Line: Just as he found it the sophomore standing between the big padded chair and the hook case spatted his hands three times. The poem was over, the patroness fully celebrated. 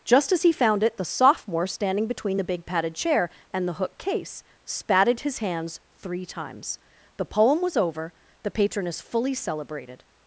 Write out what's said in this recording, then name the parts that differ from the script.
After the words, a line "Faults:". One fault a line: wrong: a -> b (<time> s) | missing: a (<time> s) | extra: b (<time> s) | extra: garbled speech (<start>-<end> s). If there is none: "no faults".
Just as he found it the sophomore standing between the big padded chair and the hook case spatted his hands three times. The poem was over, the patroness fully celebrated.
Faults:
no faults